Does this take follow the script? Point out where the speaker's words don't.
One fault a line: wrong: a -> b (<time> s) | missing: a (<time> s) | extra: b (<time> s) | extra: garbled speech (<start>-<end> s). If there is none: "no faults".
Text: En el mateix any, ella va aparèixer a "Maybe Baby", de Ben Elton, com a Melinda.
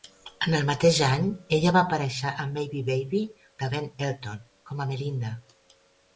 no faults